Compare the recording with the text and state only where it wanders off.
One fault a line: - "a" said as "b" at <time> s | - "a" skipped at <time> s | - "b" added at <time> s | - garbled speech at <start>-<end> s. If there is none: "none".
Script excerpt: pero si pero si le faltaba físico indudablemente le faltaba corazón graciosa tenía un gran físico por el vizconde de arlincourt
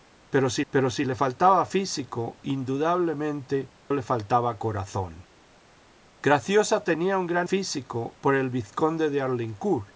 none